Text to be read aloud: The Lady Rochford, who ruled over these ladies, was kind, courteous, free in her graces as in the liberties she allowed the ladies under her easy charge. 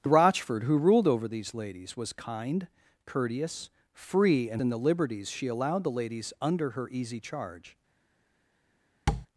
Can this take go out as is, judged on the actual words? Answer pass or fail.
fail